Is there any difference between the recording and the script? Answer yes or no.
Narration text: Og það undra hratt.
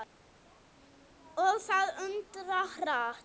no